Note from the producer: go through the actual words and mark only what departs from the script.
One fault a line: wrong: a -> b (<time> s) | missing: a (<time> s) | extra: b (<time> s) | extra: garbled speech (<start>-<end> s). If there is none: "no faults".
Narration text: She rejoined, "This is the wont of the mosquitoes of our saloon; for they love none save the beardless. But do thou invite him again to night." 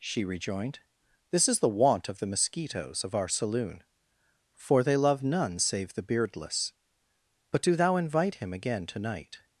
no faults